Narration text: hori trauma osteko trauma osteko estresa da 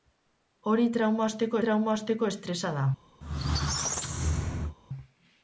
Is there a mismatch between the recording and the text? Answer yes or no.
no